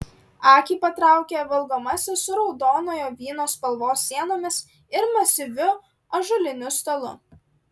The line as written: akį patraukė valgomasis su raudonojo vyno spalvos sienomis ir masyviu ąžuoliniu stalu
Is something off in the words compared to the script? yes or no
no